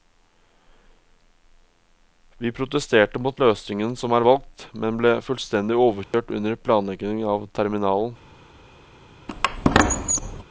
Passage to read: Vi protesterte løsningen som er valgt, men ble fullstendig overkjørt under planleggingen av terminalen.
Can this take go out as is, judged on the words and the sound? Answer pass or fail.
fail